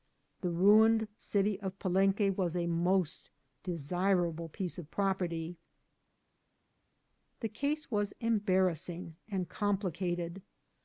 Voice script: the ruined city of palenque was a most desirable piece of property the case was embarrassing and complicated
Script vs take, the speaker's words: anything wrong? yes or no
no